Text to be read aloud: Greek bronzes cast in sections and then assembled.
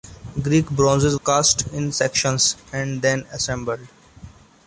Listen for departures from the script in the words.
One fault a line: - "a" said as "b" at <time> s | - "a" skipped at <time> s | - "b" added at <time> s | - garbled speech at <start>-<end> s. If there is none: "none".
none